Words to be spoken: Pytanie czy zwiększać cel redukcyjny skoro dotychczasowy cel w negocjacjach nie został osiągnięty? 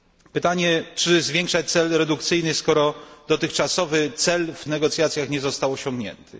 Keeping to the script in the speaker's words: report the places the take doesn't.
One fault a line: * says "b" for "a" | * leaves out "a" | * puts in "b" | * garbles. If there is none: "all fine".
all fine